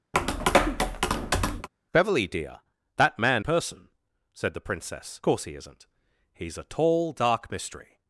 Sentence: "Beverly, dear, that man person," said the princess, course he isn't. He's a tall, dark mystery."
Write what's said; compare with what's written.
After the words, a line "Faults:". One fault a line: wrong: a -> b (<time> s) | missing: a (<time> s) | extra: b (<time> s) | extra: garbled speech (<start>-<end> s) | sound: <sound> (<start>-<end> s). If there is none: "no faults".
"Beverly, dear, that man person," said the princess, course he isn't. He's a tall, dark mystery."
Faults:
sound: tap (0.1-1.7 s)